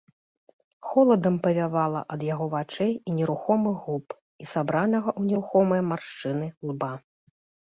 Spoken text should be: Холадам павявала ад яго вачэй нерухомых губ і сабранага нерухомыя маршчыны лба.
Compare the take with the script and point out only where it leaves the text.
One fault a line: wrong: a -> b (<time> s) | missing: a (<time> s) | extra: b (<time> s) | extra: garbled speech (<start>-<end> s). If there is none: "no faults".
extra: і (3.0 s)
extra: ў (5.2 s)